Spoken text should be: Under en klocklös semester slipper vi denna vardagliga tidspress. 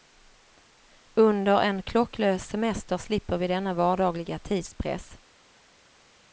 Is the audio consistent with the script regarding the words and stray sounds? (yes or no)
yes